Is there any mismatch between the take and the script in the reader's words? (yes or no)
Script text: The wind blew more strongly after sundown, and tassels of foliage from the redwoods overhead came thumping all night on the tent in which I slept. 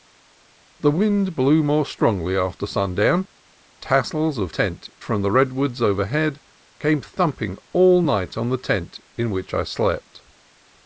yes